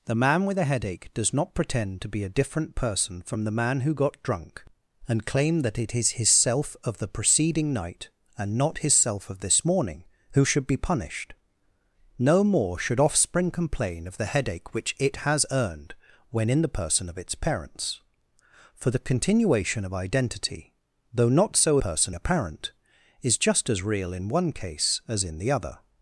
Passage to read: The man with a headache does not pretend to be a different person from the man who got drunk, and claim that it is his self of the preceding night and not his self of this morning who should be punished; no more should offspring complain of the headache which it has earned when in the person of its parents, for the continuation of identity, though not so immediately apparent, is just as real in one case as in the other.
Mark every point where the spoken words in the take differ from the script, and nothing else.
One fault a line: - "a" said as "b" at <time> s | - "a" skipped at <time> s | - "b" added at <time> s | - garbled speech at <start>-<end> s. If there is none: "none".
- "immediately" said as "person" at 21.8 s